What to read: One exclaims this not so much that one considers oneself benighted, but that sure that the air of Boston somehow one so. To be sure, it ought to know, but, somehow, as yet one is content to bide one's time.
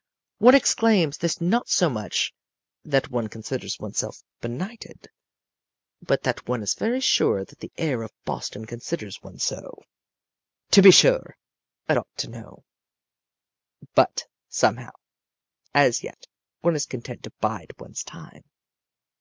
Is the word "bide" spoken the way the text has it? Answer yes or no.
yes